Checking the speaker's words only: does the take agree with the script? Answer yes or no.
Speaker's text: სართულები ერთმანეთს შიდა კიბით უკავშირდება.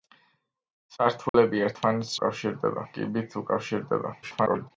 no